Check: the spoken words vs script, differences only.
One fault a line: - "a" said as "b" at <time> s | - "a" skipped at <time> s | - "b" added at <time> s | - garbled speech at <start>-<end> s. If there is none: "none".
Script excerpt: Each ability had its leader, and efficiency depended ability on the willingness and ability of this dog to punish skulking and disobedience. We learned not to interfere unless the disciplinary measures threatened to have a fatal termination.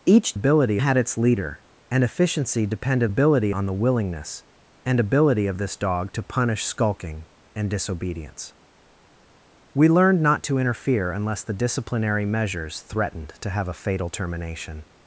none